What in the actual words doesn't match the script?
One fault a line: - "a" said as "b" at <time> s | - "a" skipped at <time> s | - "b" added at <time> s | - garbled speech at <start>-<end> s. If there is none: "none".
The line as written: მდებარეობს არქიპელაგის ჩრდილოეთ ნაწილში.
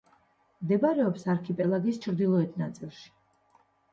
none